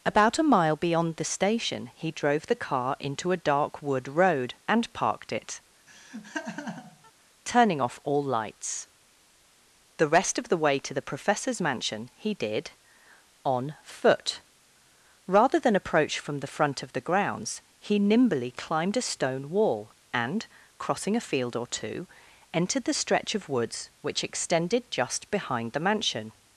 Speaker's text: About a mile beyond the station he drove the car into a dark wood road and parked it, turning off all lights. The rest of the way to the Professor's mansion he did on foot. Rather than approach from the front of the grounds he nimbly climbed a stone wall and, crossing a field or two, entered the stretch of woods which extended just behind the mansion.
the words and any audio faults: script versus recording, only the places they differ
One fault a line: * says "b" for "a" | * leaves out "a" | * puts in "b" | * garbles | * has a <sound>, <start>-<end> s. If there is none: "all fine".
* has a laugh, 5.9-7.1 s